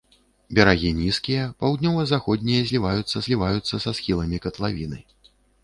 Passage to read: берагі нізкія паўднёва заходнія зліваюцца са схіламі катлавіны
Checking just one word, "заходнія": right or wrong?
right